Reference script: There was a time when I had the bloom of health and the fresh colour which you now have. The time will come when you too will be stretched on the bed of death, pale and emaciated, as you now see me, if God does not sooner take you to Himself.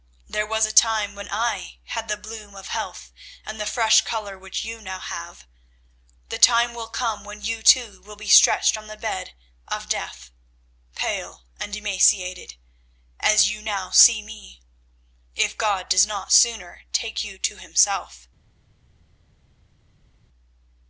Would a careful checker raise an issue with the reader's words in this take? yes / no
no